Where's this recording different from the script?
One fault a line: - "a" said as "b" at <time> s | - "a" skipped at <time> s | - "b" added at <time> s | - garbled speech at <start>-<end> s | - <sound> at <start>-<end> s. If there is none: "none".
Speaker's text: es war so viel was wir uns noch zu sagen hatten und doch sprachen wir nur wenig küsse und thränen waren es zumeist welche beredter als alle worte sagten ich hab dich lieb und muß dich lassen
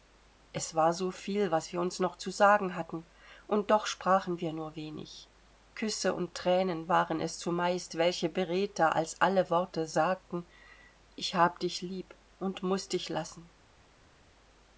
none